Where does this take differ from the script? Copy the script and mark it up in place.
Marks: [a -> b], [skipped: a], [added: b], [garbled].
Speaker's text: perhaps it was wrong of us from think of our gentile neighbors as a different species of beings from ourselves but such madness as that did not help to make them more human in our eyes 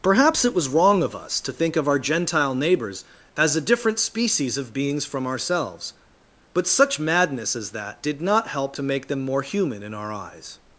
perhaps it was wrong of us [from -> to] think of our gentile neighbors as a different species of beings from ourselves but such madness as that did not help to make them more human in our eyes